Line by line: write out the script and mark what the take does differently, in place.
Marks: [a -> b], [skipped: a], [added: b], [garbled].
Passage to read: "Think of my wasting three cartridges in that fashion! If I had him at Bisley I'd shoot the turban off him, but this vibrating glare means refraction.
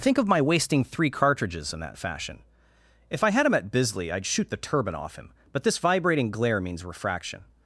"Think of my wasting three cartridges in that fashion! If I had him at Bisley I'd shoot the turban off him, but this vibrating glare means refraction.